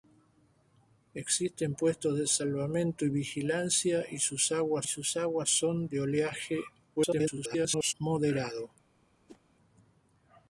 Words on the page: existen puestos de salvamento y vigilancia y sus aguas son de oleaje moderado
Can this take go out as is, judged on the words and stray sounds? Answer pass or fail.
fail